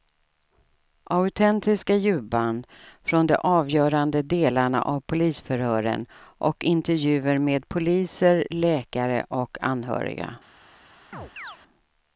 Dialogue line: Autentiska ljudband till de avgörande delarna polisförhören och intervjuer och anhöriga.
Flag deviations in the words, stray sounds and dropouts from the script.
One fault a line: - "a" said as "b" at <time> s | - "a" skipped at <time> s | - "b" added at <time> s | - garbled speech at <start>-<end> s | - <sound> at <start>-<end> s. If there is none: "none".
- "till" said as "från" at 3.0 s
- "av" added at 4.8 s
- "med poliser läkare" added at 7.4 s
- chirp at 11.1-11.6 s